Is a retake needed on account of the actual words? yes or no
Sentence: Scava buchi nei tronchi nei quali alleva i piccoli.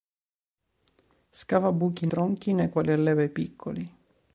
yes